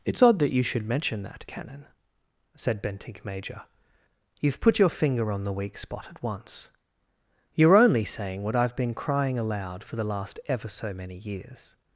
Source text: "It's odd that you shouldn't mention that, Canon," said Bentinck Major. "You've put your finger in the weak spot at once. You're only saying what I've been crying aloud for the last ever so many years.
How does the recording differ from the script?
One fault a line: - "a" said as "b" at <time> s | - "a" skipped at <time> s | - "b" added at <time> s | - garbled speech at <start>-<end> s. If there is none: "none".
- "shouldn't" said as "should" at 0.6 s
- "in" said as "on" at 5.3 s